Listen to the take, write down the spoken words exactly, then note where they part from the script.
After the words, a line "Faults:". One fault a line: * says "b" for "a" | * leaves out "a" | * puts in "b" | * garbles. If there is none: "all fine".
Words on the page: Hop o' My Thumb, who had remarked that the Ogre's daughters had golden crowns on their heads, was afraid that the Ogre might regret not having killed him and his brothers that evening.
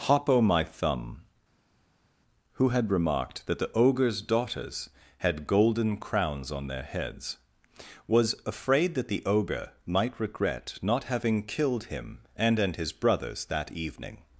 Hop o' My Thumb, who had remarked that the Ogre's daughters had golden crowns on their heads, was afraid that the Ogre might regret not having killed him and and his brothers that evening.
Faults:
* puts in "and"